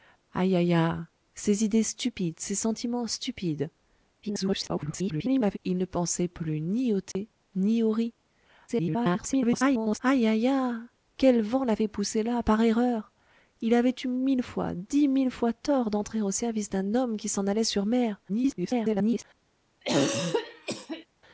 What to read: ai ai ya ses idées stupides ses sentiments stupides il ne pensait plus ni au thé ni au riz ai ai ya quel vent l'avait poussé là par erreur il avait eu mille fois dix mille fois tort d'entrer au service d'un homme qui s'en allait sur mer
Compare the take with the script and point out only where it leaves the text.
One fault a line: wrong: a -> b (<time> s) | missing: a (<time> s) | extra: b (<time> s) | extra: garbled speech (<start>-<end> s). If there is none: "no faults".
extra: garbled speech (4.2-5.6 s)
extra: garbled speech (8.7-10.0 s)
extra: garbled speech (18.3-19.2 s)